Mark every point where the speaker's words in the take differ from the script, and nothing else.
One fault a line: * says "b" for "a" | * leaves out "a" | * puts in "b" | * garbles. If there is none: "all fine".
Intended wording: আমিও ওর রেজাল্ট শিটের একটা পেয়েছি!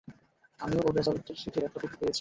* puts in "কপি"